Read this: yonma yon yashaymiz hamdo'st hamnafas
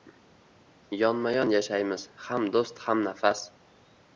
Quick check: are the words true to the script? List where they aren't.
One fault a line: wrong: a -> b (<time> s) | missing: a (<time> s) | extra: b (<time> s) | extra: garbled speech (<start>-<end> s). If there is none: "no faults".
no faults